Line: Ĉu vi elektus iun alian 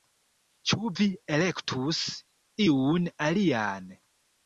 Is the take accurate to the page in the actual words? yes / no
yes